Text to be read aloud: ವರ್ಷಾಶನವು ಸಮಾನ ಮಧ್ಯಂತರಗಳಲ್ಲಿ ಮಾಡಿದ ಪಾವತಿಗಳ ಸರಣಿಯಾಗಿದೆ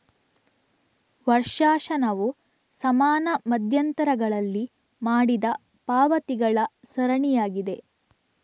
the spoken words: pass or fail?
pass